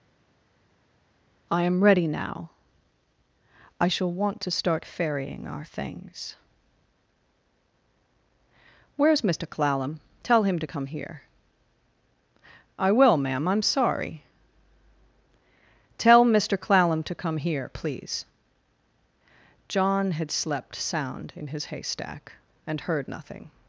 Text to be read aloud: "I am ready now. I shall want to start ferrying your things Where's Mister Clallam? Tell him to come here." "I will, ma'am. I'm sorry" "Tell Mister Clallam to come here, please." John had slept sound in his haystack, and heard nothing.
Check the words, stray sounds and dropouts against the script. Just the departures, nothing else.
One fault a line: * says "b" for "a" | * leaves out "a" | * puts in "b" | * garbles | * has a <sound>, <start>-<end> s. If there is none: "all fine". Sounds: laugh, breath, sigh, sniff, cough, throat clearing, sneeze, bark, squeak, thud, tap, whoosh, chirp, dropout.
* says "our" for "your"